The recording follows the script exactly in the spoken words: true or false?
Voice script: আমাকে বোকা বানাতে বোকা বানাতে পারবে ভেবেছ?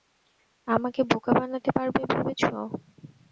false